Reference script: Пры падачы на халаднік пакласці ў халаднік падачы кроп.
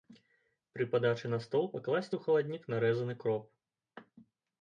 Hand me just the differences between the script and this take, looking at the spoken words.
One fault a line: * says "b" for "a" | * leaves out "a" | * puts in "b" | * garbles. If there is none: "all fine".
* says "стол" for "халаднік"
* says "нарэзаны" for "падачы"